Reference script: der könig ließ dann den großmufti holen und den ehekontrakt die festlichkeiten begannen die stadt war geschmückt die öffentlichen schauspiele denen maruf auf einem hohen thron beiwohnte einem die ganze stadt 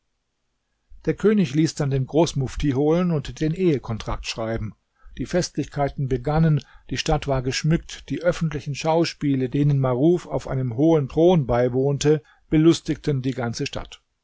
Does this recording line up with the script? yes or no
no